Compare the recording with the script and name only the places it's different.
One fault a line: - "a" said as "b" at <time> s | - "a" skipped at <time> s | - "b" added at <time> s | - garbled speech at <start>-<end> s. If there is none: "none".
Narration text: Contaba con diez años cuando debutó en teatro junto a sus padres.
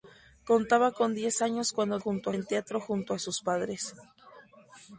- "debutó" said as "junto" at 1.9 s